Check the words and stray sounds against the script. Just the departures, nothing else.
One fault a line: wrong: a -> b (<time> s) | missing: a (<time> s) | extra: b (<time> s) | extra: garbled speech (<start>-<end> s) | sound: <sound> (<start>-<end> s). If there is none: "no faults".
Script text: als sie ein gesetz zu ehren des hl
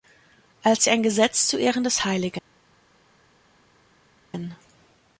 no faults